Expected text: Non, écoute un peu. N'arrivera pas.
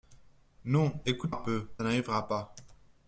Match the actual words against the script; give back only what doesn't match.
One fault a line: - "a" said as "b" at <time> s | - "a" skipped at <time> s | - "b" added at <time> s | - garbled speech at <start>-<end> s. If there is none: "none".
none